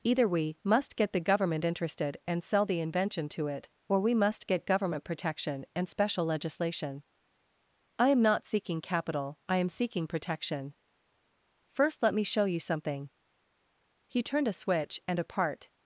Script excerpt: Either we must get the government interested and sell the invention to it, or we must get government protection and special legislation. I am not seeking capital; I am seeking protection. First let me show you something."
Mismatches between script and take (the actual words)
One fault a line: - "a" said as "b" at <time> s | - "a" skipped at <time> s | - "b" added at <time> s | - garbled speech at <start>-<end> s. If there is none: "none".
- "He turned a switch and a part" added at 14.1 s